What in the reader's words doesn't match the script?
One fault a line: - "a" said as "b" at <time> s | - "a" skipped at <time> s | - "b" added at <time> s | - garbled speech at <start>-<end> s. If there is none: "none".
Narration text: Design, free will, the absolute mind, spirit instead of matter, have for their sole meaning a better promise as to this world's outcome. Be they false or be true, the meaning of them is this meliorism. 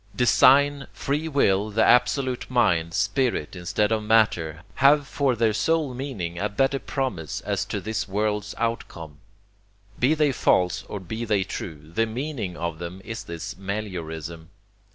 - "they" added at 11.3 s